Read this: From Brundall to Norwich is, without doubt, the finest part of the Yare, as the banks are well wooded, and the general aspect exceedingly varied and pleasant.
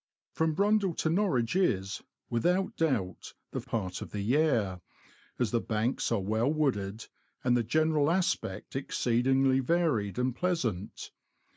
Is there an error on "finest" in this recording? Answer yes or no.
yes